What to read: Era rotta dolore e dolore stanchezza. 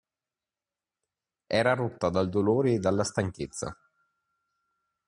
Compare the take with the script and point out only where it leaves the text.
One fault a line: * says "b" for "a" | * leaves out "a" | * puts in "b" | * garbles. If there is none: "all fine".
* puts in "dal"
* says "dalla" for "dolore"